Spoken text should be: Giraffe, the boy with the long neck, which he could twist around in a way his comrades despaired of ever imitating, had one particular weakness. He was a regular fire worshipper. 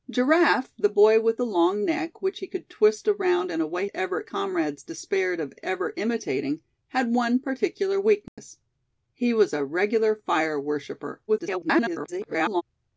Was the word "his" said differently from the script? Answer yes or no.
yes